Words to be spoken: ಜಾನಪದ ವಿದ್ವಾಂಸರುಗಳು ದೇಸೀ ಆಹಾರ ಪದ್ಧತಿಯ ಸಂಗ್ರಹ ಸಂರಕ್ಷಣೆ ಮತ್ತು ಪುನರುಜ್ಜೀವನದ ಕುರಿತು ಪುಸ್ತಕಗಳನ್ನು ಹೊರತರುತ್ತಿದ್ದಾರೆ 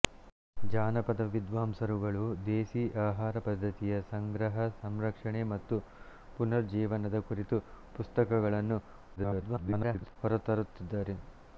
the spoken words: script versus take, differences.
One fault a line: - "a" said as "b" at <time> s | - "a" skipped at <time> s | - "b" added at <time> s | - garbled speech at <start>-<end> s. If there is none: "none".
- garbled speech at 9.2-10.2 s